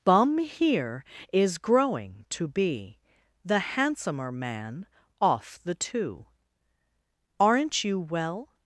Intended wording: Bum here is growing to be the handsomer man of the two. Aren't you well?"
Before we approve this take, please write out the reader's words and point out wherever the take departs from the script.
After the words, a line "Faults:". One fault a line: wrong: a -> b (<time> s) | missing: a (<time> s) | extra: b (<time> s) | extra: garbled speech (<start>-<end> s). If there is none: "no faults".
Bum here is growing to be the handsomer man off the two. Aren't you well?"
Faults:
wrong: of -> off (5.2 s)